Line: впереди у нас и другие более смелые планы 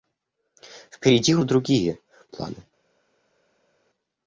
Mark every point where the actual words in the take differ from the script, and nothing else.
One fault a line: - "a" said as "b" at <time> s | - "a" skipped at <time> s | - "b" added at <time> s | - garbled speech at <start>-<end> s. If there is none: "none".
- "нас" skipped at 1.4 s
- "более смелые" skipped at 2.0 s